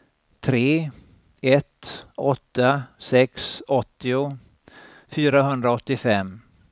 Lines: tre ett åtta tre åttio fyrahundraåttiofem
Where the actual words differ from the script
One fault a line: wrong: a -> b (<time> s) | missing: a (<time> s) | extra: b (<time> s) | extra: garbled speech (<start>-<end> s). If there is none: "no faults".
wrong: tre -> sex (3.0 s)